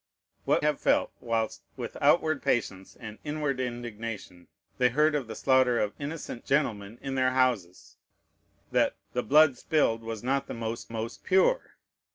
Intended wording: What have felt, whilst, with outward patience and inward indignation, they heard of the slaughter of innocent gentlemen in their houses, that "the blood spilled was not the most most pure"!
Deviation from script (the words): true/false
false